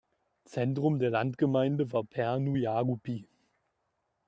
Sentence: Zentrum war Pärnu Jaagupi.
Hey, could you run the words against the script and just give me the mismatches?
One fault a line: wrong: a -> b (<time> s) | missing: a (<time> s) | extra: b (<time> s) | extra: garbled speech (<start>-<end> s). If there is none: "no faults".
extra: der Landgemeinde (1.0 s)